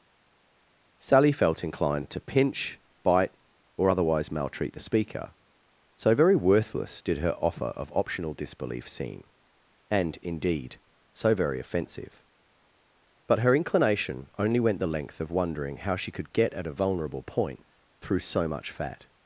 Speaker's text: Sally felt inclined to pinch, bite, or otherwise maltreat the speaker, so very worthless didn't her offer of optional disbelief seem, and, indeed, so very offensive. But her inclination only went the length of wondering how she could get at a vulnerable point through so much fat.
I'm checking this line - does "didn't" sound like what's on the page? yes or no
no